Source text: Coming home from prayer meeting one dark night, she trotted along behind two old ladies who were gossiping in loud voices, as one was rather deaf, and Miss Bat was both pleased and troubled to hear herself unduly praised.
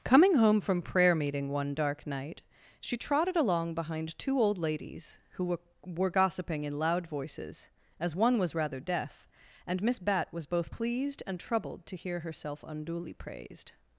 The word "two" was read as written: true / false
true